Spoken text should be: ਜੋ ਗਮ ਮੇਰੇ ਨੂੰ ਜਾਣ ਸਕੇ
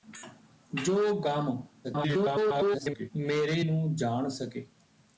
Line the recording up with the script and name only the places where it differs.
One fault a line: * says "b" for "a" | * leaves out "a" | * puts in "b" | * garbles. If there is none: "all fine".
* garbles